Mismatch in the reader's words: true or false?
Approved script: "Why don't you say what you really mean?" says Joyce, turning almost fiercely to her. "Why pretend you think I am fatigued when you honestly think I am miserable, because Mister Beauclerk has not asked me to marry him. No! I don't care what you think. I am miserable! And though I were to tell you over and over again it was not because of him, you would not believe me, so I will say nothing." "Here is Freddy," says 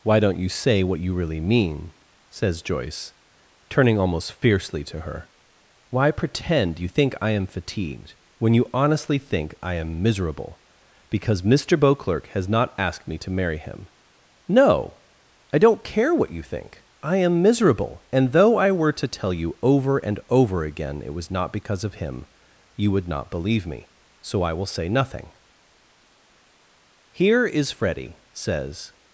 false